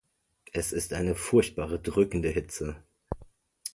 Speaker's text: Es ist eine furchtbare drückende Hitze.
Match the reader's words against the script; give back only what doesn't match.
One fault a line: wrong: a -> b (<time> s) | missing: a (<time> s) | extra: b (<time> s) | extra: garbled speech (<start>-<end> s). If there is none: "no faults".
no faults